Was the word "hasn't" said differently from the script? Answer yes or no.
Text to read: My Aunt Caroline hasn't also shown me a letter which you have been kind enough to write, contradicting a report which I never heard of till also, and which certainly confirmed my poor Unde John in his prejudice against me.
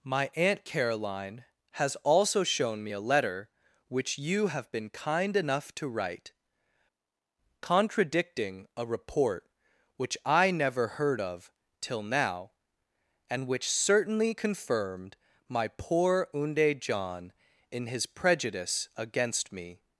yes